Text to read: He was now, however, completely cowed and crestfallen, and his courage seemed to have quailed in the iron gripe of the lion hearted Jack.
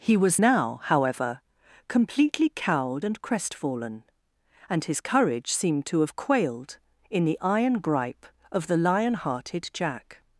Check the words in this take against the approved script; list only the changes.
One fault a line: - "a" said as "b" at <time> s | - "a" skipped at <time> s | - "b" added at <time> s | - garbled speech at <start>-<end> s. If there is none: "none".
none